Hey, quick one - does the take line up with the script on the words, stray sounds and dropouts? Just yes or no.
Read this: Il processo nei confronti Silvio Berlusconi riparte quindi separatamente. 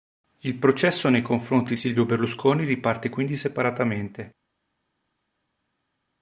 yes